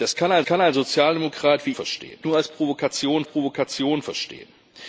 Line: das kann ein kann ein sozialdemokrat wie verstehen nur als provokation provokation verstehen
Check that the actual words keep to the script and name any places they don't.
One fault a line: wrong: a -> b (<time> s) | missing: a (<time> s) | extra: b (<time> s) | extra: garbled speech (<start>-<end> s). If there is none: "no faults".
no faults